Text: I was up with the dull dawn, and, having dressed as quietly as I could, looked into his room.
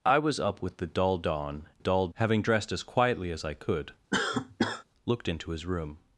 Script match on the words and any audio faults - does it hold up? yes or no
no